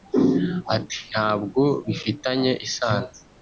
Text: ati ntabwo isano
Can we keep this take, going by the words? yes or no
no